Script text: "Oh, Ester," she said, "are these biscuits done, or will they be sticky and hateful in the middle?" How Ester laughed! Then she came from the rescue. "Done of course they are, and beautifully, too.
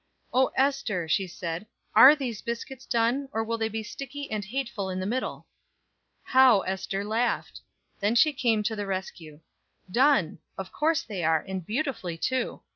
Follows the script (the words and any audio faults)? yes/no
no